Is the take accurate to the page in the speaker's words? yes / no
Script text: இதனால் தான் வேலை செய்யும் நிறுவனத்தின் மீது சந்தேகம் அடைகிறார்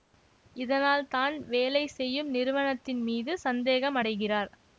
yes